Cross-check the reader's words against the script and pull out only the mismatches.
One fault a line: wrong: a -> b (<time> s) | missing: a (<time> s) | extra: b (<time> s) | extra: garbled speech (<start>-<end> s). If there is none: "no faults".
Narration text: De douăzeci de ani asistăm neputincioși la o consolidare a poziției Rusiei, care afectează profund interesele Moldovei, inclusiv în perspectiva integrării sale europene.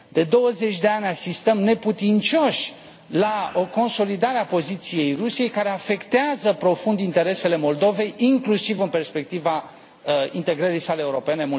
no faults